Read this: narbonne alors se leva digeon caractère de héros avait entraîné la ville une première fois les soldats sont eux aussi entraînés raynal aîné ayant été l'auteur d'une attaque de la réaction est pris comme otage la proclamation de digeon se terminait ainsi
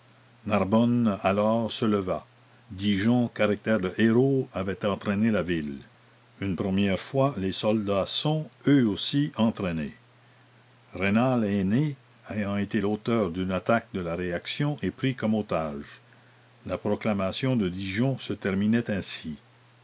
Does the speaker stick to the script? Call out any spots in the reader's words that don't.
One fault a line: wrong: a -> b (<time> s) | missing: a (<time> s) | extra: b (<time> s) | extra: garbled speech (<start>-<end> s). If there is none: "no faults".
no faults